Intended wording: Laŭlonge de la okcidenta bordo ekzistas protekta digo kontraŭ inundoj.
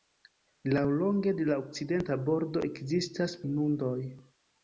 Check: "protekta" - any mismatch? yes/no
yes